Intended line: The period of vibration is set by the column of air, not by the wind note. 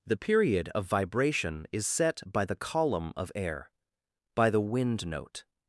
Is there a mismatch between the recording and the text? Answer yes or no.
yes